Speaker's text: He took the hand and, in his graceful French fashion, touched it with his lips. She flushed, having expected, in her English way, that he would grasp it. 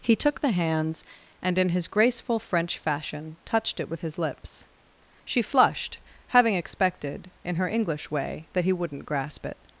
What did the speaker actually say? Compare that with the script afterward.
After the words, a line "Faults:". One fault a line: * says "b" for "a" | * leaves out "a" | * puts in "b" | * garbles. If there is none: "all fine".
He took the hands and, in his graceful French fashion, touched it with his lips. She flushed, having expected, in her English way, that he wouldn't grasp it.
Faults:
* says "hands" for "hand"
* says "wouldn't" for "would"